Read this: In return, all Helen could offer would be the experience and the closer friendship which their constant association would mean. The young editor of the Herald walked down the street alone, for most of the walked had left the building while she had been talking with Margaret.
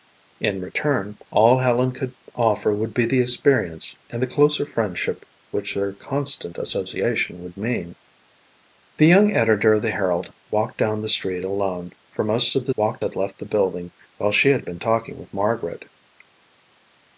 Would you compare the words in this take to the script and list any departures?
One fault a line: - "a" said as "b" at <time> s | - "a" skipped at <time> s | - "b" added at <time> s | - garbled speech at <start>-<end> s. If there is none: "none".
none